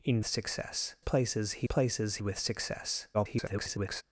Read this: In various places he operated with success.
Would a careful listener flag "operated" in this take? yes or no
yes